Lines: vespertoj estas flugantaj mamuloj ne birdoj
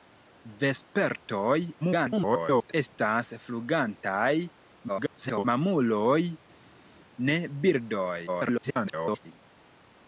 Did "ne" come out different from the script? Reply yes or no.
no